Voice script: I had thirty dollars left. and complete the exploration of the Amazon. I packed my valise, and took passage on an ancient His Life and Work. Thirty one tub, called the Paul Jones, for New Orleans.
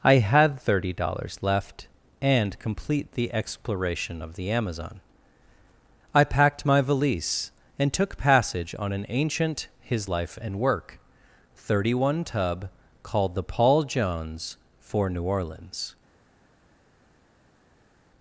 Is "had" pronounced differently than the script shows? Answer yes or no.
no